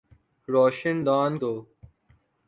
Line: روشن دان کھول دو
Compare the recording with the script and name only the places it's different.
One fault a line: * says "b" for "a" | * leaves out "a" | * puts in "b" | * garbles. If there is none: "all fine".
* leaves out "کھول"